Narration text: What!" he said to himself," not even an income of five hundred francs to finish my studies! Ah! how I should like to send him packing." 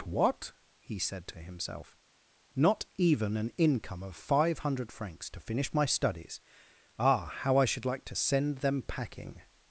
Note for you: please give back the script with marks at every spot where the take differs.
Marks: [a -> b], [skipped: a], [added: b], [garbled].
What!" he said to himself," not even an income of five hundred francs to finish my studies! Ah! how I should like to send [him -> them] packing."